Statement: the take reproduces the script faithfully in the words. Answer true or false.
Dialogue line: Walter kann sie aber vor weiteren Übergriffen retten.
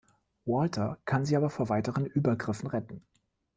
true